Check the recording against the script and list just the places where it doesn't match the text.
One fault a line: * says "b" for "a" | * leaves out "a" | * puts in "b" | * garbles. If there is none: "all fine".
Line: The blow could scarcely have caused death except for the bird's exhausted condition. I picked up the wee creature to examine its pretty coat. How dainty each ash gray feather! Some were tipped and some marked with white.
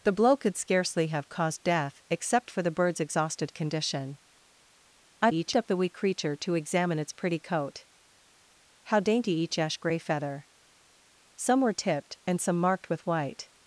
* says "each" for "picked"